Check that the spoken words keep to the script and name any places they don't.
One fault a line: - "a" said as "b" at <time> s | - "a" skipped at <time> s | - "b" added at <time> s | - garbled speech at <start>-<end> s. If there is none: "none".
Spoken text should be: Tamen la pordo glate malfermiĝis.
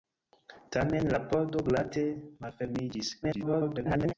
- garbled speech at 3.2-4.1 s